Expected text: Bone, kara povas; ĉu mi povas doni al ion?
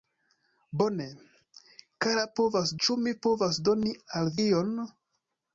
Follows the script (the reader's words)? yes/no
yes